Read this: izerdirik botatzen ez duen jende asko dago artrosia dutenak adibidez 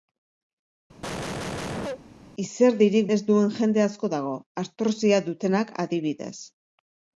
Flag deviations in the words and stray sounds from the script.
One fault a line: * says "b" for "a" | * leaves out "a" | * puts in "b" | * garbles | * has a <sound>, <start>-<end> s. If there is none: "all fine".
* has a cough, 1.0-2.0 s
* leaves out "botatzen"